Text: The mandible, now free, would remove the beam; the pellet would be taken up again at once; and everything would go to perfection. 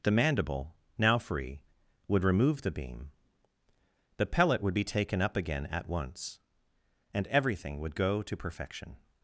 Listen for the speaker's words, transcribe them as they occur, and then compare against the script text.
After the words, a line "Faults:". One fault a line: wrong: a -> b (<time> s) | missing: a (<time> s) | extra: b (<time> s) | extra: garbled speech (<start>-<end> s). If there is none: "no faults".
The mandible, now free, would remove the beam; the pellet would be taken up again at once; and everything would go to perfection.
Faults:
no faults